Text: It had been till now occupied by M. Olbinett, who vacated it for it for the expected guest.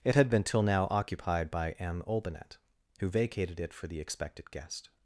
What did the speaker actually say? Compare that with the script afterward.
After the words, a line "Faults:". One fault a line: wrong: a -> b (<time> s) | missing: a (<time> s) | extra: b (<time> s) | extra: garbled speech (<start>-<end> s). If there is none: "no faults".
It had been till now occupied by M. Olbinett, who vacated it for the expected guest.
Faults:
missing: it for (3.9 s)